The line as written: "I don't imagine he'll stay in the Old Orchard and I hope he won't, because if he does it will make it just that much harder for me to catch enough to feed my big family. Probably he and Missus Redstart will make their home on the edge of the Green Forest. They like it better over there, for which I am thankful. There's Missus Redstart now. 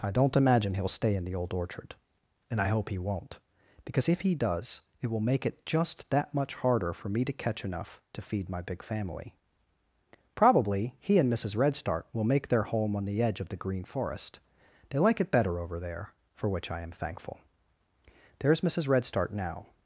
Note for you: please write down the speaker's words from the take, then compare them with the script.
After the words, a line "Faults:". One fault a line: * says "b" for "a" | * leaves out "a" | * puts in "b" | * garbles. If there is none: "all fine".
"I don't imagine he'll stay in the Old Orchard and I hope he won't, because if he does it will make it just that much harder for me to catch enough to feed my big family. Probably he and Missus Redstart will make their home on the edge of the Green Forest. They like it better over there, for which I am thankful. There's Missus Redstart now.
Faults:
all fine